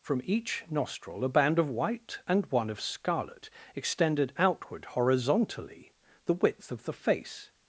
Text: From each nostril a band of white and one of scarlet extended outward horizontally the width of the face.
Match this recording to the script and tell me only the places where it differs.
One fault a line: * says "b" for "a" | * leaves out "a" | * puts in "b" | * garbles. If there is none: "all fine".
all fine